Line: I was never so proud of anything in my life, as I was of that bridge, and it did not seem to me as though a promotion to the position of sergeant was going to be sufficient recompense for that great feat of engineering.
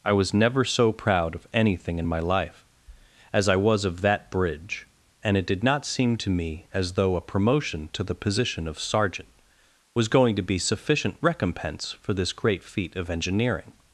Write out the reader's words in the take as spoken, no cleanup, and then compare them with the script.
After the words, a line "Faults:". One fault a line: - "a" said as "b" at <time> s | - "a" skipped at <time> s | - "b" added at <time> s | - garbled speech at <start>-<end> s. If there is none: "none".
I was never so proud of anything in my life, as I was of that bridge, and it did not seem to me as though a promotion to the position of sergeant was going to be sufficient recompense for this great feat of engineering.
Faults:
- "that" said as "this" at 12.1 s